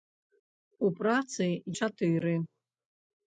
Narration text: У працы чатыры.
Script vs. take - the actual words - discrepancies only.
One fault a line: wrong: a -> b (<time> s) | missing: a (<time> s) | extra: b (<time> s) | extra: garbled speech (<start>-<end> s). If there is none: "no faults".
no faults